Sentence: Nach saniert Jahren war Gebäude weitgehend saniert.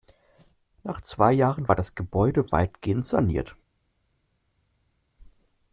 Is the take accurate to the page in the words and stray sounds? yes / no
no